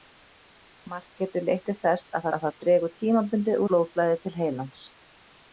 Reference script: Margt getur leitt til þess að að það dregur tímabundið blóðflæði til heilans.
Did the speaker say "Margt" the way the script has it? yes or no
yes